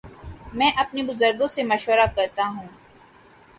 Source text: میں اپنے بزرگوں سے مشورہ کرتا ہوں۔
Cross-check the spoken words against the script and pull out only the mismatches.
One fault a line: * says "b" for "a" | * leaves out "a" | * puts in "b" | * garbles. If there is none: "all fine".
all fine